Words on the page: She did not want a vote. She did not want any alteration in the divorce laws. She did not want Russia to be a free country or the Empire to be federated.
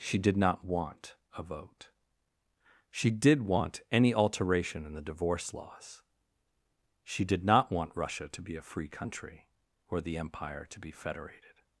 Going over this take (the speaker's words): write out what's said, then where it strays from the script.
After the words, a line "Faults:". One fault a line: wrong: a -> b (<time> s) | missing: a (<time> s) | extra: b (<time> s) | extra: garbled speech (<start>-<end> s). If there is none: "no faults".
She did not want a vote. She did want any alteration in the divorce laws. She did not want Russia to be a free country or the Empire to be federated.
Faults:
missing: not (3.4 s)